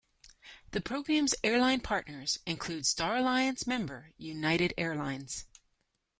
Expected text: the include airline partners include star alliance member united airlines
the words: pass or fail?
fail